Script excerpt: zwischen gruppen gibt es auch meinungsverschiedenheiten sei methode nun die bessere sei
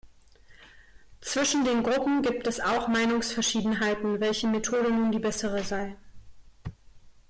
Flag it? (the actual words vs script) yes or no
yes